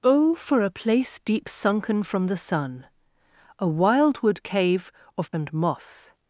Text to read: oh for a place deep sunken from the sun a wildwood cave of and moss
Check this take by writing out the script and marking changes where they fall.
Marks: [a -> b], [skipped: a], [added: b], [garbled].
oh for a place deep sunken from the sun a wildwood cave of and moss